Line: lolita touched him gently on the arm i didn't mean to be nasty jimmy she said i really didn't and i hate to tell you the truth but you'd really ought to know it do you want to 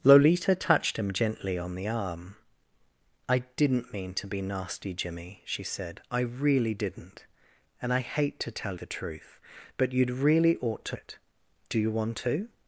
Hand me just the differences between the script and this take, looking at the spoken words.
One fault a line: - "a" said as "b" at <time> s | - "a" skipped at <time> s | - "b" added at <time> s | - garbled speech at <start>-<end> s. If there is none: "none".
- "you" skipped at 8.8 s
- "know" skipped at 11.0 s